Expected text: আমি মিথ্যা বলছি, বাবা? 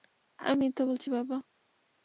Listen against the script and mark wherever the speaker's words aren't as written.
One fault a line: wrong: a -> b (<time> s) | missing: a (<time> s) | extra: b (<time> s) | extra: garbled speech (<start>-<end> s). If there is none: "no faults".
no faults